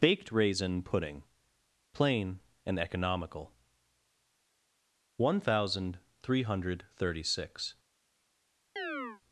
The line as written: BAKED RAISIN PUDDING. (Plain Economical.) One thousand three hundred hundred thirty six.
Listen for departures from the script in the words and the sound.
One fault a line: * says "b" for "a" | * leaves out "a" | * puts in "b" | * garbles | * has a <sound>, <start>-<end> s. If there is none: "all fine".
* puts in "and"
* leaves out "hundred"
* has a chirp, 8.8-9.2 s